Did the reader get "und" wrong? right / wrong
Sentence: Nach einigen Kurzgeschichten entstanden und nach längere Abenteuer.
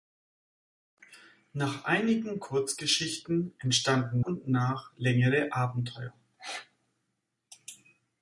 right